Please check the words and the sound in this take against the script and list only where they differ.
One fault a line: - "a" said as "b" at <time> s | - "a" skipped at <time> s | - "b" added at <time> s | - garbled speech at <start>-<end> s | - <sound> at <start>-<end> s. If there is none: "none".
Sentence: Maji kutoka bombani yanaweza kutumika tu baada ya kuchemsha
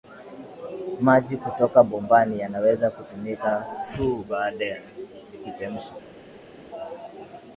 none